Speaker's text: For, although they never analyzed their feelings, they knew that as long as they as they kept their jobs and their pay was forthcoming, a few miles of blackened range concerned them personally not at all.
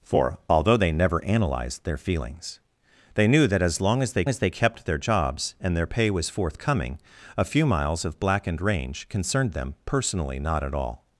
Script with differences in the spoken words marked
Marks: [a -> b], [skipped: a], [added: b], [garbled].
For, although they never analyzed their feelings, they knew that as long as they as they kept their jobs and their pay was forthcoming, a few miles of blackened range concerned them personally not at all.